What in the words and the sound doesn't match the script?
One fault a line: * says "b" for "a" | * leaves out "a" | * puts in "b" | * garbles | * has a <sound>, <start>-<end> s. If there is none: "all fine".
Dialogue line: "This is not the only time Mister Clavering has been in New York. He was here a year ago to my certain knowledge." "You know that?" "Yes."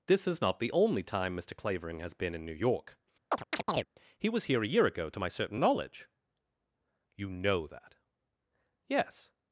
* has a chirp, 3.3-3.9 s